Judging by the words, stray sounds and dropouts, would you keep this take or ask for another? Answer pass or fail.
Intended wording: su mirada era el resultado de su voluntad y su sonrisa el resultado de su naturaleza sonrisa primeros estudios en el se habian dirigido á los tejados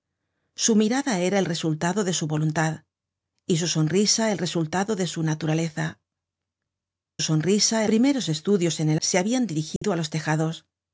fail